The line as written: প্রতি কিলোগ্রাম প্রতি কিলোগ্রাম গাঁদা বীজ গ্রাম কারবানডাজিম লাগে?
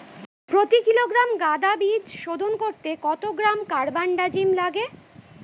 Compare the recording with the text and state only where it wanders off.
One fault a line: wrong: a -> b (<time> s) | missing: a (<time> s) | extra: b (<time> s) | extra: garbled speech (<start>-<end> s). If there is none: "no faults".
wrong: প্রতি কিলোগ্রাম গাঁদা বীজ -> গাঁদা বীজ শোধন করতে কত (1.4 s)